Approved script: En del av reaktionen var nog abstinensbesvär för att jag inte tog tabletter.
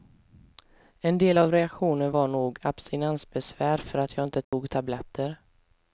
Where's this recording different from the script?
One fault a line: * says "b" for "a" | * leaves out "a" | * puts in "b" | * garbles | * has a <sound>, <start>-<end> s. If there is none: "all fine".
* has a dropout, 4.4-4.5 s